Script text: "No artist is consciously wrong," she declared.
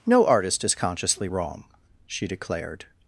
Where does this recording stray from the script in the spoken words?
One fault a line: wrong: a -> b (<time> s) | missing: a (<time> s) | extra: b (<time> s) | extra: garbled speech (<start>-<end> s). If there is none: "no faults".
no faults